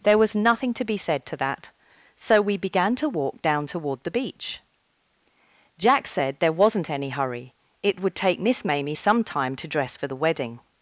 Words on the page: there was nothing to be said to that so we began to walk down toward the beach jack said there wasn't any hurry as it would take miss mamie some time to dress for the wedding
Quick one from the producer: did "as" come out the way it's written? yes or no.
no